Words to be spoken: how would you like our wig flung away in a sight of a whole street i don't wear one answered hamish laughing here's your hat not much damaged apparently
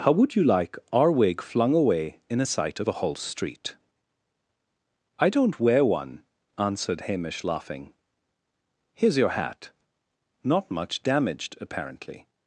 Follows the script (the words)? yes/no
yes